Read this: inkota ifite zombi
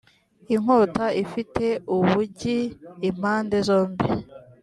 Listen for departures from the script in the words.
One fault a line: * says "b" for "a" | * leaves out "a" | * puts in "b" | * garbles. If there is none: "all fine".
* puts in "ubugi impande"